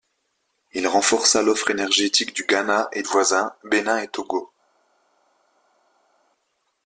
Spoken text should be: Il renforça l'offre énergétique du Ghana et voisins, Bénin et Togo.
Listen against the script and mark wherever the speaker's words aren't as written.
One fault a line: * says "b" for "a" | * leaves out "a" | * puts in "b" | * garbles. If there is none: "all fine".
all fine